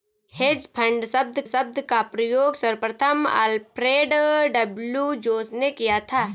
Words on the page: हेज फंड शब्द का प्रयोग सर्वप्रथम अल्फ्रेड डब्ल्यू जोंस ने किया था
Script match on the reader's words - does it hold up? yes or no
no